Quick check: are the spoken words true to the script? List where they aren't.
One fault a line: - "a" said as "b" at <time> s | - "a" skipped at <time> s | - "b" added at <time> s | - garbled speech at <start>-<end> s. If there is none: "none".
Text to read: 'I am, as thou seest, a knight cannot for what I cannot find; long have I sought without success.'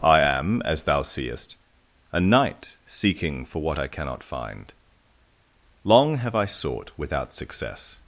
- "cannot" said as "seeking" at 2.9 s